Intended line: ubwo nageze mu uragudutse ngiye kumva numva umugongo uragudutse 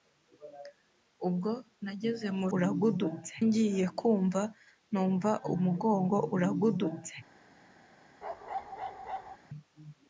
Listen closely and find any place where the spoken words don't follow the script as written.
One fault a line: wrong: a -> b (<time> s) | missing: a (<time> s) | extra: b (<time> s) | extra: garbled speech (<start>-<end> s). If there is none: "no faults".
no faults